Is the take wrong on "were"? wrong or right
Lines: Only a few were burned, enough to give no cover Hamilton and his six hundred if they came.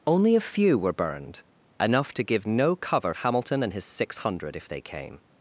right